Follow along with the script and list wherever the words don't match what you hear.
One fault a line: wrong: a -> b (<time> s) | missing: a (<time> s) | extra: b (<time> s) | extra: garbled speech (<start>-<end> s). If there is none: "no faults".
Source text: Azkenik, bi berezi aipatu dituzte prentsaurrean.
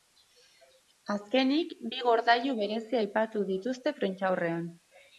extra: gordailu (2.1 s)